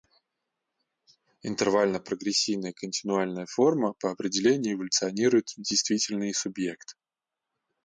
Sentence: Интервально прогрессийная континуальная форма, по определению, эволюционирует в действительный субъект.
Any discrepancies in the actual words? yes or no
no